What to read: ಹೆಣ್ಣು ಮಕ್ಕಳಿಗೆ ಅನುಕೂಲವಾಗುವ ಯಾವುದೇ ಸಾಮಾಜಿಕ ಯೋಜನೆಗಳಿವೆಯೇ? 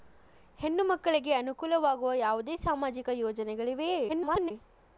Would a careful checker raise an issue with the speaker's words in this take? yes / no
yes